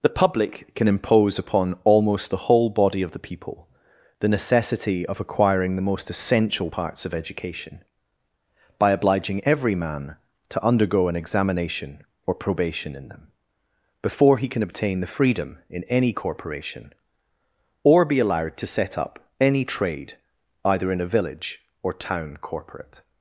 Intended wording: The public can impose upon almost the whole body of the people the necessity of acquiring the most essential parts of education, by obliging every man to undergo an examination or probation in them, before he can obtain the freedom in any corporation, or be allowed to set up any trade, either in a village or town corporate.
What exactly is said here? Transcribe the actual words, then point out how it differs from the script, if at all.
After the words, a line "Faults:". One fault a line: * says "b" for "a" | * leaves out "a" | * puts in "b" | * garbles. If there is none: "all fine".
The public can impose upon almost the whole body of the people the necessity of acquiring the most essential parts of education, by obliging every man to undergo an examination or probation in them, before he can obtain the freedom in any corporation, or be allowed to set up any trade, either in a village or town corporate.
Faults:
all fine